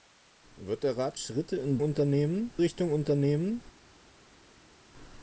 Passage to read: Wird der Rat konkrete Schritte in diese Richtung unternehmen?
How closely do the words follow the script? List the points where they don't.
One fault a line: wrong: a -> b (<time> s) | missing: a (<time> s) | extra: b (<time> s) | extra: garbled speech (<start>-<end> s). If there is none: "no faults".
missing: konkrete (1.2 s)
wrong: diese -> unternehmen (1.8 s)